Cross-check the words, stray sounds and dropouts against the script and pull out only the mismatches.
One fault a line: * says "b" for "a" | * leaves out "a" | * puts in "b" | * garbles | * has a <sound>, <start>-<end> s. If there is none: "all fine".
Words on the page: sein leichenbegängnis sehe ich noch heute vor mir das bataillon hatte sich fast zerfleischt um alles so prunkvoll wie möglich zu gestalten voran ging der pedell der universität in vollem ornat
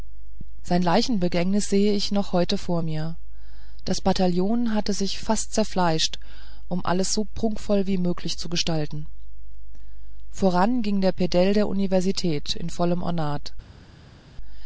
all fine